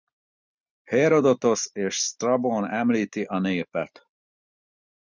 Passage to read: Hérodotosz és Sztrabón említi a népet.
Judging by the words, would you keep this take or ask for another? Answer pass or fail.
pass